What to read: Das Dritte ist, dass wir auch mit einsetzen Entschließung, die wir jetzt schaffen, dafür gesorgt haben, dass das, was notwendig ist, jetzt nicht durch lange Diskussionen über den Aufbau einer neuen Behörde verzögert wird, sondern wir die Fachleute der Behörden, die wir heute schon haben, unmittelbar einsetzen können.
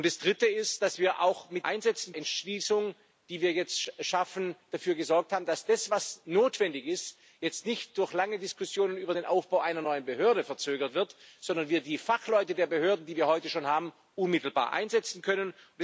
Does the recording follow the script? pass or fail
pass